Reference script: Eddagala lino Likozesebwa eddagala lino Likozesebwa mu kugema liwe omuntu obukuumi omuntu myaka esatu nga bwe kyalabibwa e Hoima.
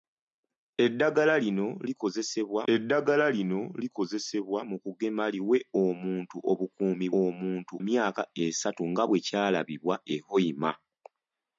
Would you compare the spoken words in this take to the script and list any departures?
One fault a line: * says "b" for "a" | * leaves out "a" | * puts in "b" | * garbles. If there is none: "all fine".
all fine